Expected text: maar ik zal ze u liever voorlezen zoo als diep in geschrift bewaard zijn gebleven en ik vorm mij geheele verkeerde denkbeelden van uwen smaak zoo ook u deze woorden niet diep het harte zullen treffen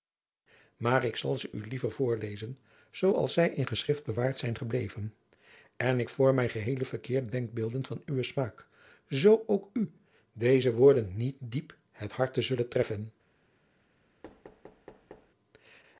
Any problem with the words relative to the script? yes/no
yes